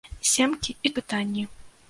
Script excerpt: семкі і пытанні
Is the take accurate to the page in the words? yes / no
yes